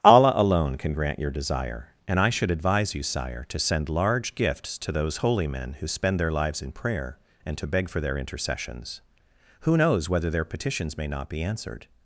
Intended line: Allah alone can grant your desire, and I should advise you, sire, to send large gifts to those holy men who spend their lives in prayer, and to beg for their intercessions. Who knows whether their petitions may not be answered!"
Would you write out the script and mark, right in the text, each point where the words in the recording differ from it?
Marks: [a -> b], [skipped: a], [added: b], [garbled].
Allah alone can grant your desire, and I should advise you, sire, to send large gifts to those holy men who spend their lives in prayer, and to beg for their intercessions. Who knows whether their petitions may not be answered!"